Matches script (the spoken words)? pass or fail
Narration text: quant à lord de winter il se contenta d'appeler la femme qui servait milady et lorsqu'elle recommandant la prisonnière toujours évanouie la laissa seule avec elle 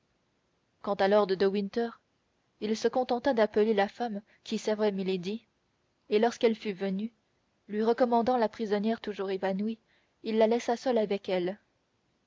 fail